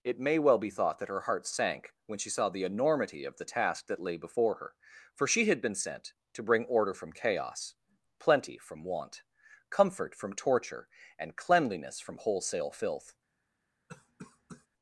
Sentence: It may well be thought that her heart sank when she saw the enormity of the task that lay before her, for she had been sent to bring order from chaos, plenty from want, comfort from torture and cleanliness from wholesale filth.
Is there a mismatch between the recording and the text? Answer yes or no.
no